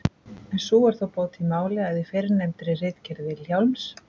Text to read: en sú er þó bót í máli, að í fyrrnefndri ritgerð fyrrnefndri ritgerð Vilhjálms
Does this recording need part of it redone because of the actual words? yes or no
yes